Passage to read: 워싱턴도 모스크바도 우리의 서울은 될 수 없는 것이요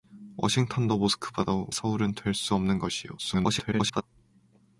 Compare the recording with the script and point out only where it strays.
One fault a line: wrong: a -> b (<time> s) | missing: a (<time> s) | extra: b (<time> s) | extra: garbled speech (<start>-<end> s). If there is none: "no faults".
missing: 우리의 (1.7 s)
extra: garbled speech (3.2-4.0 s)